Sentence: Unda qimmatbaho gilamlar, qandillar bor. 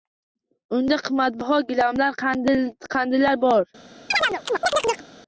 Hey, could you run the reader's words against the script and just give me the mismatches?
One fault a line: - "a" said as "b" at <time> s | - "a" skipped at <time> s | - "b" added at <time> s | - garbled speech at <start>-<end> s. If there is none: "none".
none